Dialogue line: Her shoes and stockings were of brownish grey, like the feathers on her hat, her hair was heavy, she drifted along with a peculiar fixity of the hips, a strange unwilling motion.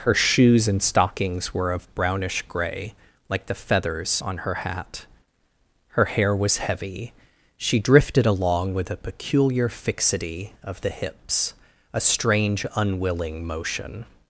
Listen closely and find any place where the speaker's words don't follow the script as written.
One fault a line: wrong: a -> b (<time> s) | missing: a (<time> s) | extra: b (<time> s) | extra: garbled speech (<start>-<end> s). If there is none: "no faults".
no faults